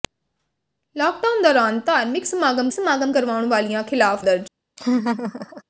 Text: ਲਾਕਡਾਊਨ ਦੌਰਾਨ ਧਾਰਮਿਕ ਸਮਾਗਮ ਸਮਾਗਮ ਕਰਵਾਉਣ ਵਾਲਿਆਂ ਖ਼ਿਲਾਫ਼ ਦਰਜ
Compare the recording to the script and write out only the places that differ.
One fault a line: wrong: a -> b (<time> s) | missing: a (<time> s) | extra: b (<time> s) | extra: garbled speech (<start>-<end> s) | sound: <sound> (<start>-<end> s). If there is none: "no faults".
sound: laugh (4.8-5.6 s)